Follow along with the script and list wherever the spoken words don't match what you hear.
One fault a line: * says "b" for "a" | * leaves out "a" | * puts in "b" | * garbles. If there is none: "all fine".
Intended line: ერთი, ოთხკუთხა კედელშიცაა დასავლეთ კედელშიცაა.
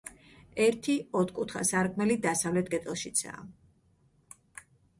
* says "სარკმელი" for "კედელშიცაა"